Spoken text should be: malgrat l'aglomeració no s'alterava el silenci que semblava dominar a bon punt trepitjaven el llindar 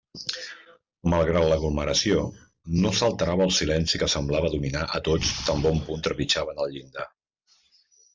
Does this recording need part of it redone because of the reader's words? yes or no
yes